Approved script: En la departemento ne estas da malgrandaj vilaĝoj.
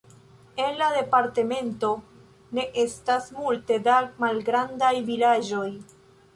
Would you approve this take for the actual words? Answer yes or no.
no